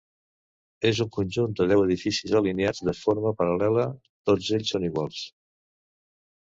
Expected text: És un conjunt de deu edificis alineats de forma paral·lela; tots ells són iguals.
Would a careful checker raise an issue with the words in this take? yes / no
no